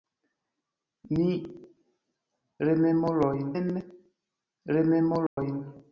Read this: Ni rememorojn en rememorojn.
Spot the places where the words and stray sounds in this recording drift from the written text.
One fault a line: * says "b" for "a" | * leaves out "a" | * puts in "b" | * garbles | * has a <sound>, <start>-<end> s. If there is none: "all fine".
* has a dropout, 5.3-5.4 s